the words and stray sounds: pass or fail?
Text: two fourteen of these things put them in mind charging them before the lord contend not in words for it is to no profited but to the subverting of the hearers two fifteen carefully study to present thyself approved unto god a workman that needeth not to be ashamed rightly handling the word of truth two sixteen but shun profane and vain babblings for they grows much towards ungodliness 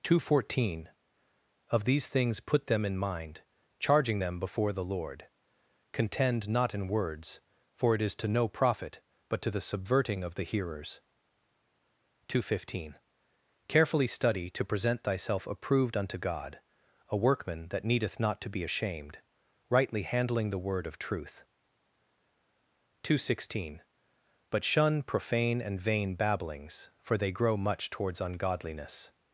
fail